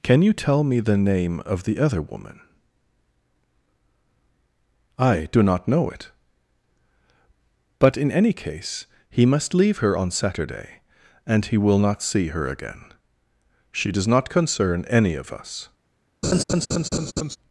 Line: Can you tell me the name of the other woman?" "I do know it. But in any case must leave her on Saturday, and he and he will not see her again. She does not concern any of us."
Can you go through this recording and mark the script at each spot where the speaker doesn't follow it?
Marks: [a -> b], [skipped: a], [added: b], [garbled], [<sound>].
Can you tell me the name of the other woman?" "I do [added: not] know it. But in any case [added: he] must leave her on Saturday, and he [skipped: and he] will not see her again. She does not concern any of us." [laugh]